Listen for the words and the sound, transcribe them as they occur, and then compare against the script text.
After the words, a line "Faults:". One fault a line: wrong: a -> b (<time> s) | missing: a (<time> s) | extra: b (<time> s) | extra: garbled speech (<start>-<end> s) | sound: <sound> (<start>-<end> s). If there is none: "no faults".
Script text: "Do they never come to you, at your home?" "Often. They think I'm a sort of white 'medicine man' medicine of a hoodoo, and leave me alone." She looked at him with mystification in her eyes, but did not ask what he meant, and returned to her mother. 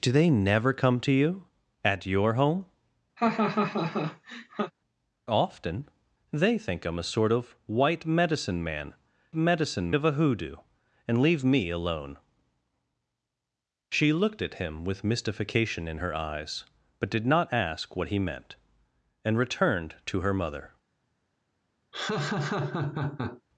"Do they never come to you, at your home?" "Often. They think I'm a sort of white 'medicine man' medicine of a hoodoo, and leave me alone." She looked at him with mystification in her eyes, but did not ask what he meant, and returned to her mother.
Faults:
sound: laugh (3.2-4.7 s)
sound: laugh (21.9-23.4 s)